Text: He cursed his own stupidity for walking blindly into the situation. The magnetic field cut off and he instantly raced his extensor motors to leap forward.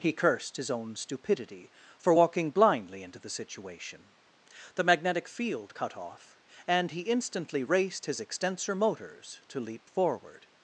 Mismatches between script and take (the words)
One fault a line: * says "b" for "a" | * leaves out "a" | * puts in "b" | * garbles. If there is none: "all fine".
all fine